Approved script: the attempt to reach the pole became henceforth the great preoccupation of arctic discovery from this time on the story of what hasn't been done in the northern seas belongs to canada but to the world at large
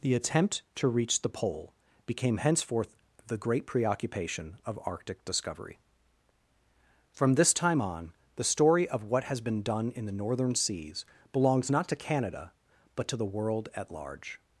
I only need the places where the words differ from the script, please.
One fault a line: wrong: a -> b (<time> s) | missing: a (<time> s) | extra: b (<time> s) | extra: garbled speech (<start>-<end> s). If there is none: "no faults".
wrong: hasn't -> has (9.2 s)
extra: not (11.7 s)